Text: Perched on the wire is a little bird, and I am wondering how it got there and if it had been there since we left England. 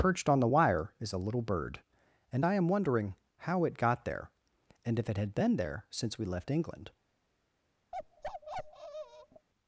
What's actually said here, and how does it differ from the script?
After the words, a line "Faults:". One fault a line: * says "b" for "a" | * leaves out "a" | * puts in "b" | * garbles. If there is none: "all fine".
Perched on the wire is a little bird, and I am wondering how it got there and if it had been there since we left England.
Faults:
all fine